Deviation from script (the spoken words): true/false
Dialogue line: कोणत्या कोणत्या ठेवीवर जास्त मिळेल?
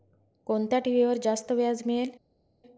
true